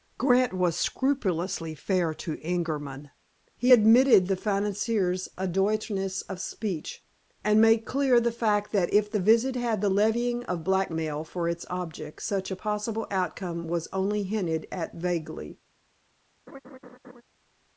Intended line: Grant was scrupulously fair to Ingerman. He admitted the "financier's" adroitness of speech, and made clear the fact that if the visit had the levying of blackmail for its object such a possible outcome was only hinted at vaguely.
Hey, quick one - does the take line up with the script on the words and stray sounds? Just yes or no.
no